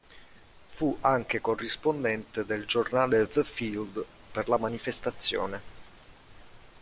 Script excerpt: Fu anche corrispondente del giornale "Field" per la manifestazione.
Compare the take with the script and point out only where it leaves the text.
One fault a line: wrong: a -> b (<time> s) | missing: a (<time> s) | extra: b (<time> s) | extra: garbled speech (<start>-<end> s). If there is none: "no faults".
extra: The (3.3 s)